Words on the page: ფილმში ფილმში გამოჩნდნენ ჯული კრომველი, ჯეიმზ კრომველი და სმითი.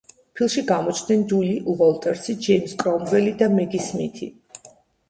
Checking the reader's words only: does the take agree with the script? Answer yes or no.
no